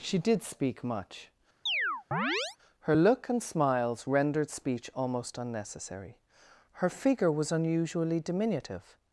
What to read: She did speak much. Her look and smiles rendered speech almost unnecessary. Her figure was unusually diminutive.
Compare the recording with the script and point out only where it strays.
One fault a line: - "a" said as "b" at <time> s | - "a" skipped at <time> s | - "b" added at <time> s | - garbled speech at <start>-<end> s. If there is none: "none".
none